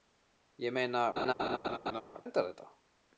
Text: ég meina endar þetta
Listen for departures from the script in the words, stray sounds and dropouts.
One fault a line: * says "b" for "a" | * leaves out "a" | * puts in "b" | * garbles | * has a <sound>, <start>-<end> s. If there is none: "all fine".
* has a laugh, 1.2-2.0 s